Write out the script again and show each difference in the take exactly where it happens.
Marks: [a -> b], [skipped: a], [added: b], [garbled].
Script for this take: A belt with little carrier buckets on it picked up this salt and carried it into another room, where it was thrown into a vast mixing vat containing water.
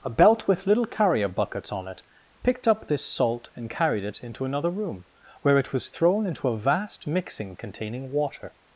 A belt with little carrier buckets on it picked up this salt and carried it into another room, where it was thrown into a vast mixing [skipped: vat] containing water.